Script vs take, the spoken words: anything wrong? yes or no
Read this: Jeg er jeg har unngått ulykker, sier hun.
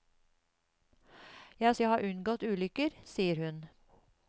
no